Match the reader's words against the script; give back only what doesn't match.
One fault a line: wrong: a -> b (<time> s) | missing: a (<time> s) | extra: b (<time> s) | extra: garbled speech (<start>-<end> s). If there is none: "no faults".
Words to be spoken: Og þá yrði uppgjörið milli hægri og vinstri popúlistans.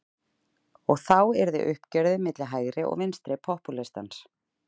no faults